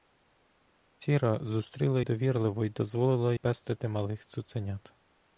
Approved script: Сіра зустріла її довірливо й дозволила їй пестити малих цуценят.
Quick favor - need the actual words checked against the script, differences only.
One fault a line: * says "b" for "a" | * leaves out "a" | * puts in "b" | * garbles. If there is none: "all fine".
* leaves out "її"
* leaves out "їй"